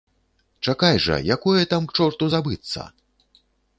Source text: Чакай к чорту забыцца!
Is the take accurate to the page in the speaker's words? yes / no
no